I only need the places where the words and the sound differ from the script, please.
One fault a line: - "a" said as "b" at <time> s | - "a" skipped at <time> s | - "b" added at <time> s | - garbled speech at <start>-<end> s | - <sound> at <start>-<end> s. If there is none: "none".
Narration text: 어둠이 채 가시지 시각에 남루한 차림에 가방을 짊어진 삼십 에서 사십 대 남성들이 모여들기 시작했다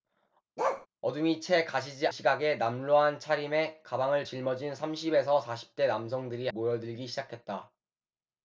- bark at 0.6-0.9 s